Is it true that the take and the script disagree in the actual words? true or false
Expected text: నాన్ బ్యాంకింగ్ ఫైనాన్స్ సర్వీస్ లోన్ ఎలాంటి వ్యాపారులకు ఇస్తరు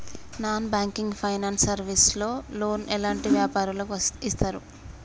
true